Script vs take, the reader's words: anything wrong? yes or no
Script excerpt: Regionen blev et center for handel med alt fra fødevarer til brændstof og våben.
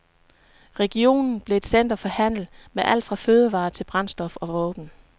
no